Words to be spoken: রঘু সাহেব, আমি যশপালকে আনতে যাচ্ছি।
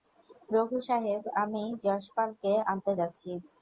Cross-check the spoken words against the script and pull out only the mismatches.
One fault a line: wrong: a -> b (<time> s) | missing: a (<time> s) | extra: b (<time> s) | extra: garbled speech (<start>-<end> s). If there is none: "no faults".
no faults